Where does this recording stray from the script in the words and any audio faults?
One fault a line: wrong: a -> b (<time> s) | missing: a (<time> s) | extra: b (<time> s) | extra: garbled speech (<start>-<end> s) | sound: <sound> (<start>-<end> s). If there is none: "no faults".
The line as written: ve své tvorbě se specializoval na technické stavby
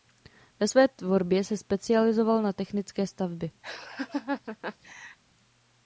sound: laugh (3.6-5.2 s)